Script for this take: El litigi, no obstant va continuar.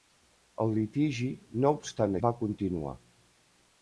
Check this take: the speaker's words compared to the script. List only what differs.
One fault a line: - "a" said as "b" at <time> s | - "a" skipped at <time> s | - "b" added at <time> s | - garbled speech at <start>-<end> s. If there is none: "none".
none